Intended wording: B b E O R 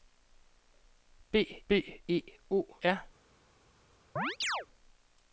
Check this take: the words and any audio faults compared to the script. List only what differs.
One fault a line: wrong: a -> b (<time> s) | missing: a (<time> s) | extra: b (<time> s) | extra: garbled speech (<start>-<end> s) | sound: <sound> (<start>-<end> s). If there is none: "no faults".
sound: chirp (4.2-4.7 s)